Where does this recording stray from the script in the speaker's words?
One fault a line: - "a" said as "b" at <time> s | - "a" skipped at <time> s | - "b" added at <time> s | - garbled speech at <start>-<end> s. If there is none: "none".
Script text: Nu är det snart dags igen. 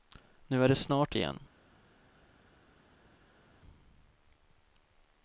- "dags" skipped at 1.2 s